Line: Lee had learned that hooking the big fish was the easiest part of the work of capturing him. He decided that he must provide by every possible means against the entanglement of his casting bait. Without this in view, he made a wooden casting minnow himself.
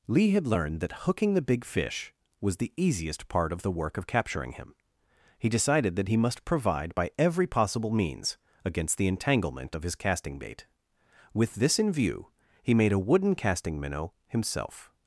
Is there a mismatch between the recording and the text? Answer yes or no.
yes